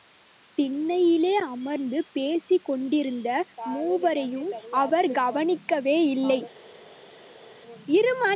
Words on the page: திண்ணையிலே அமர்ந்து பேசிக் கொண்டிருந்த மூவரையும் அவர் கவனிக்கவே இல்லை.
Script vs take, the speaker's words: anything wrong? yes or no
no